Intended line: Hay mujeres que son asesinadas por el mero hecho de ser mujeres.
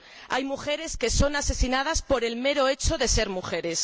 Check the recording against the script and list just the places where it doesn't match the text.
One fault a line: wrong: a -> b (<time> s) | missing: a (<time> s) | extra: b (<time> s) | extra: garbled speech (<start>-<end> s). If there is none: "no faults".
no faults